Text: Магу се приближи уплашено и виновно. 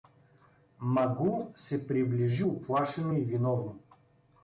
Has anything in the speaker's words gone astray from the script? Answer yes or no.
no